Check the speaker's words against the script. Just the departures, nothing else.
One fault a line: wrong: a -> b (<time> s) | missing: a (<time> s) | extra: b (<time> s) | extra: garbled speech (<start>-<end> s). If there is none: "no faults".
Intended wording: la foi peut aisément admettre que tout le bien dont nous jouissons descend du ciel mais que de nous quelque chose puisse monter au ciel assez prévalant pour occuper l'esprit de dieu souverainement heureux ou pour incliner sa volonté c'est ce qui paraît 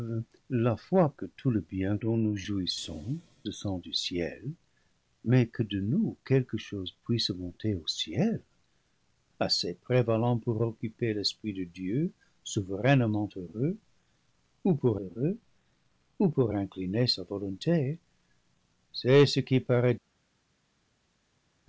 missing: peut aisément admettre (1.1 s)
extra: heureux ou pour (15.0 s)